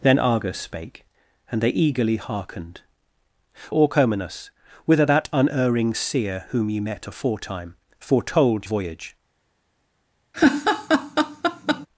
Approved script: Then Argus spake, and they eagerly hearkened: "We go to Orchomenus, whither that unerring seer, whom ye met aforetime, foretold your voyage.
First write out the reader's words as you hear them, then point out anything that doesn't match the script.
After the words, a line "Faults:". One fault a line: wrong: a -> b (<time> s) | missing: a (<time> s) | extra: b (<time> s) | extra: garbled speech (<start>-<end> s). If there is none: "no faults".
Then Argus spake, and they eagerly hearkened: "Orchomenus, whither that unerring seer, whom ye met aforetime, foretold voyage.
Faults:
missing: We go to (2.8 s)
missing: your (8.7 s)